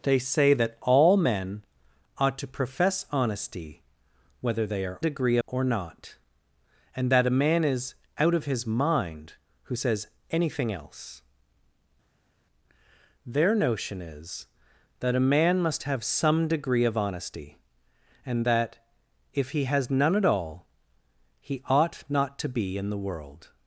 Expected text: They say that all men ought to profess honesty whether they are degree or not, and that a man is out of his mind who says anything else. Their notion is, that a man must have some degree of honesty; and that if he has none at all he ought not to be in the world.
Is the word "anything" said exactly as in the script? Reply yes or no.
yes